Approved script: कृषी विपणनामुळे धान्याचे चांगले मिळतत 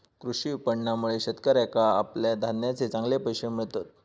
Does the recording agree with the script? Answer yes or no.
no